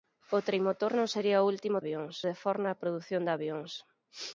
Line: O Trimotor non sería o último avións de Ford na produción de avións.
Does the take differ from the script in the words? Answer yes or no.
no